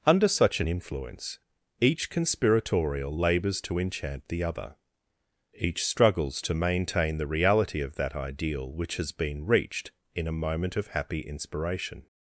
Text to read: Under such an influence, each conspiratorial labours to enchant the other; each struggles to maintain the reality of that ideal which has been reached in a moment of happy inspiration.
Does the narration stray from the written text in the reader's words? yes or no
no